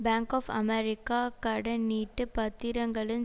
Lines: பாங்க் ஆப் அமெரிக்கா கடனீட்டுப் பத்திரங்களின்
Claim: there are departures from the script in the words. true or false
false